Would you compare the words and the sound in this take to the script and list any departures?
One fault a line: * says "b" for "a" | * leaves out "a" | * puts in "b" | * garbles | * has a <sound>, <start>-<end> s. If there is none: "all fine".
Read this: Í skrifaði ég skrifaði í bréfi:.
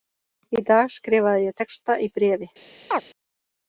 * puts in "dag"
* says "texta" for "skrifaði"
* has a chirp, 2.9-3.0 s